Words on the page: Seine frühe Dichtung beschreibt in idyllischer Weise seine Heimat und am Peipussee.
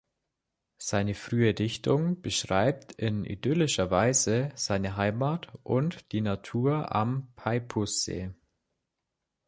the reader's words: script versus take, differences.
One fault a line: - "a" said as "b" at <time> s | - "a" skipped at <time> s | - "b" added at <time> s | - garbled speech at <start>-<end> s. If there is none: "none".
- "die Natur" added at 6.1 s